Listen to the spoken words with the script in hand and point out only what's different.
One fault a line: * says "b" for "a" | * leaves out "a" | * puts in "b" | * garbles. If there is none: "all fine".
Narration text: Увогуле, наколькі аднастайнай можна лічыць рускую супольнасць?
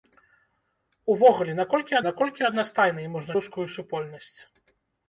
* puts in "наколькі"
* leaves out "лічыць"